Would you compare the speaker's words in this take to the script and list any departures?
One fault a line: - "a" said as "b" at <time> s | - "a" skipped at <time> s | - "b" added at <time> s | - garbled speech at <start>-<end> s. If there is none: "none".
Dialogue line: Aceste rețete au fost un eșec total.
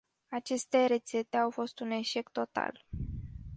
none